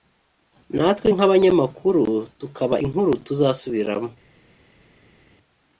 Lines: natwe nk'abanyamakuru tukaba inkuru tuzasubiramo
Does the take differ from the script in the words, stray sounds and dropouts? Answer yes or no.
no